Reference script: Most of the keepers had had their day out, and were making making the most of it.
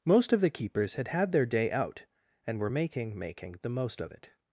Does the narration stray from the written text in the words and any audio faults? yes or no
no